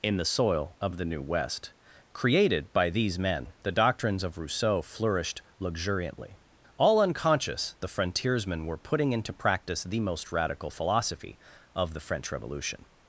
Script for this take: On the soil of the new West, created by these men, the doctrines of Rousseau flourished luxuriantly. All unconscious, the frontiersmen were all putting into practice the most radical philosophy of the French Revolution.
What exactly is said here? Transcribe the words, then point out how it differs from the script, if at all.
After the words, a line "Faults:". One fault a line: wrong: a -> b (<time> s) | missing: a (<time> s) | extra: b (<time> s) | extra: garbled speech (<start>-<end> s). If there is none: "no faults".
In the soil of the new West, created by these men, the doctrines of Rousseau flourished luxuriantly. All unconscious, the frontiersmen were putting into practice the most radical philosophy of the French Revolution.
Faults:
wrong: On -> In (0.0 s)
missing: all (8.8 s)